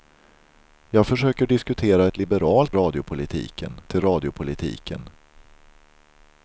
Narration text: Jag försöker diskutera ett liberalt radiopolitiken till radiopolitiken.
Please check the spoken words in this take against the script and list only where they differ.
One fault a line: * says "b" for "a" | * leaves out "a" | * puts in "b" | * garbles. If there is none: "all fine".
all fine